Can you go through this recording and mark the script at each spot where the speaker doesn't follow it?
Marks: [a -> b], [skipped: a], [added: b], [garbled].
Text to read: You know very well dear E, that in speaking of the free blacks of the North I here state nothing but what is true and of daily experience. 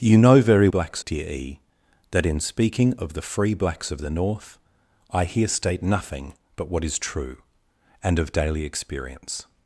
You know very [well -> blacks] dear E, that in speaking of the free blacks of the North I here state nothing but what is true and of daily experience.